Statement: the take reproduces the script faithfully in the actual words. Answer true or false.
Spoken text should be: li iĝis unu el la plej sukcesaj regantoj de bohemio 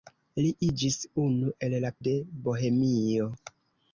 false